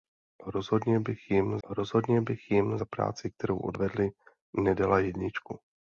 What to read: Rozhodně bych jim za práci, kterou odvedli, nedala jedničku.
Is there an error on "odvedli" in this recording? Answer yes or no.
no